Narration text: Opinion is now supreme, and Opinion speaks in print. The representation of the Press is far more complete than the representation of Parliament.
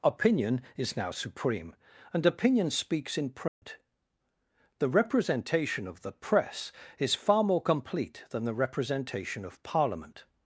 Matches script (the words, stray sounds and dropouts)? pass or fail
fail